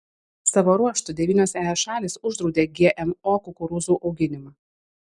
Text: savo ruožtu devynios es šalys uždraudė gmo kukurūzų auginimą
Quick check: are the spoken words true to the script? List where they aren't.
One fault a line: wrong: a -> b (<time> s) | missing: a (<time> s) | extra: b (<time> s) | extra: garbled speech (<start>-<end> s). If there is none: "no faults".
no faults